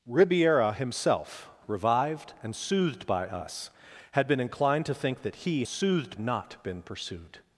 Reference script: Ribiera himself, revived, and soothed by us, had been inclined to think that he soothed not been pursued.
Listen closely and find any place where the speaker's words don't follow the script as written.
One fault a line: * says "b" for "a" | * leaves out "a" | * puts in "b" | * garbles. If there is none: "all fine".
all fine